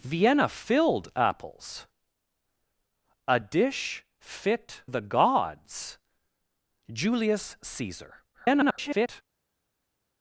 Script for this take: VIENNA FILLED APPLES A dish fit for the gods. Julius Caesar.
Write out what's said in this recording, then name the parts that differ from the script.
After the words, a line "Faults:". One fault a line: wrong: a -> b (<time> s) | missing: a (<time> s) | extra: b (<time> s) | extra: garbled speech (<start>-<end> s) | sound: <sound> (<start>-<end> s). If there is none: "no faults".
VIENNA FILLED APPLES A dish fit the gods. Julius Caesar. [garbled]
Faults:
missing: for (4.8 s)
extra: garbled speech (8.3-9.2 s)